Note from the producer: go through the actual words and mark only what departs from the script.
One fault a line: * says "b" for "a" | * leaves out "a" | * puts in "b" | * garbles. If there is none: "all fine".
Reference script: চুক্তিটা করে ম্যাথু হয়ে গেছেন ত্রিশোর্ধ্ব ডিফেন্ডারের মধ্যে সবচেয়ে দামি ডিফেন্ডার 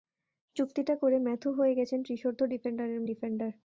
* leaves out "মধ্যে সবচেয়ে দামি"